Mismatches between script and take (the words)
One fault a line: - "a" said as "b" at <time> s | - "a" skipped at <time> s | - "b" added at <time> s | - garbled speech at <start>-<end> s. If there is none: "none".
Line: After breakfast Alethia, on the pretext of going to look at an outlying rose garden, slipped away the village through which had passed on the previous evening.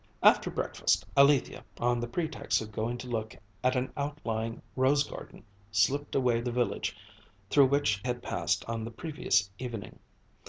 none